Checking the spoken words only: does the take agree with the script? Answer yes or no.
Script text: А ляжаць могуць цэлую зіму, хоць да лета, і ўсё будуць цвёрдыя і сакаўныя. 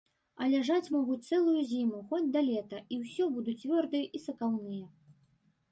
yes